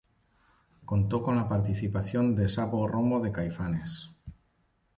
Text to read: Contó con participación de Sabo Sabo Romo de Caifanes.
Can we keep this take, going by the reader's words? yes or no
no